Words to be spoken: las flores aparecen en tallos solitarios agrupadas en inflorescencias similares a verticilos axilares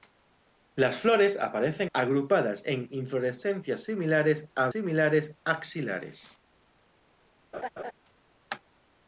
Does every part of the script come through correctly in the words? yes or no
no